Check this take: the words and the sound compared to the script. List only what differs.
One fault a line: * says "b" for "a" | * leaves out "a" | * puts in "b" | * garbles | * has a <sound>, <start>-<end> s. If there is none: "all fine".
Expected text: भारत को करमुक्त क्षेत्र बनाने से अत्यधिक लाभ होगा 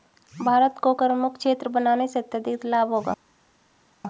all fine